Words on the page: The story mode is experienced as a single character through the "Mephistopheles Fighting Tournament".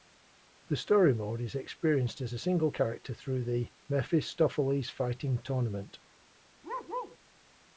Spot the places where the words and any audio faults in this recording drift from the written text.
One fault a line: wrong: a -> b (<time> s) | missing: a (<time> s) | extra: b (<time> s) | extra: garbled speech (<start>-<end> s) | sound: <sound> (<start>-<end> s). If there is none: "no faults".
sound: bark (6.6-7.2 s)